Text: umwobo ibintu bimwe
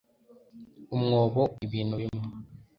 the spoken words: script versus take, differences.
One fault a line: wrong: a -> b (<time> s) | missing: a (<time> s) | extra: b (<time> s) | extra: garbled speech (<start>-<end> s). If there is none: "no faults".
no faults